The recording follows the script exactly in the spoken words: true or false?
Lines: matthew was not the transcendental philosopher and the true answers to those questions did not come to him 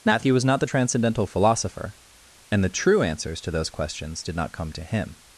true